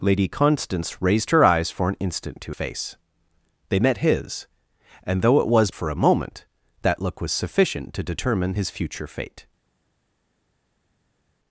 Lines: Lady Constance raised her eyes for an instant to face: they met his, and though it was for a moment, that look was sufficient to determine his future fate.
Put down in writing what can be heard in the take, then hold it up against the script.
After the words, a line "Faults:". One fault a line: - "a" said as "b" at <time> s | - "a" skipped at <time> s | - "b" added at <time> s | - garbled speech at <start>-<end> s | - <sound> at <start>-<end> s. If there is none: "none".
Lady Constance raised her eyes for an instant to face: they met his, and though it was for a moment, that look was sufficient to determine his future fate.
Faults:
none